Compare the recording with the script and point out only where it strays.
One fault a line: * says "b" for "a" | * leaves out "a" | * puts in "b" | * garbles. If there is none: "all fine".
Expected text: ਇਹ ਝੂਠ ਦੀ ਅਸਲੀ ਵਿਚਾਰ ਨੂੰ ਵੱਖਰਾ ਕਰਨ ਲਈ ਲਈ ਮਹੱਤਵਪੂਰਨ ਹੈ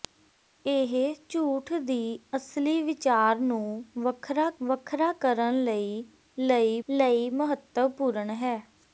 * puts in "ਵੱਖਰਾ"
* puts in "ਲਈ"